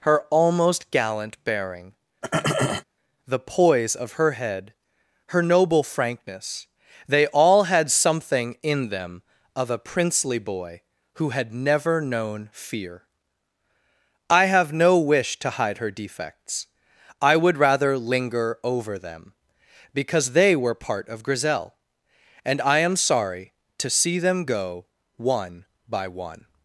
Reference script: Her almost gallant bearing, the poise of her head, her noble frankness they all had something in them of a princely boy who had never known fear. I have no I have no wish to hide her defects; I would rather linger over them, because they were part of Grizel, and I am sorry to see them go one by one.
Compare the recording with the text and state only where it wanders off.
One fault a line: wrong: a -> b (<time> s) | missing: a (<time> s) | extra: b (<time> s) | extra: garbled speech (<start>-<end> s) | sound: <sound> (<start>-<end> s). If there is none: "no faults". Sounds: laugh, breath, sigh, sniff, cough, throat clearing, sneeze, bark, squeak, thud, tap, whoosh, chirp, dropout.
sound: throat clearing (2.2-2.8 s)
missing: I have no (15.0 s)